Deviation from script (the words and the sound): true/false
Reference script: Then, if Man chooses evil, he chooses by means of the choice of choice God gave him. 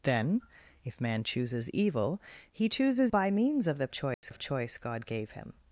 true